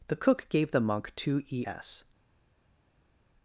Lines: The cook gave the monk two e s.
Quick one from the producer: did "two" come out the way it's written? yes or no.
yes